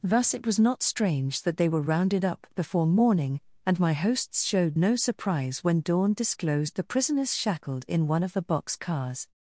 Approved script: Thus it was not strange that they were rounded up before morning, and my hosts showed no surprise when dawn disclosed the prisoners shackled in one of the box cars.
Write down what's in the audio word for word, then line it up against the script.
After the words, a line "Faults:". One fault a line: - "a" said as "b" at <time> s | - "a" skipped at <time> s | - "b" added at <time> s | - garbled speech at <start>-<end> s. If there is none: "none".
Thus it was not strange that they were rounded up before morning, and my hosts showed no surprise when dawn disclosed the prisoners shackled in one of the box cars.
Faults:
none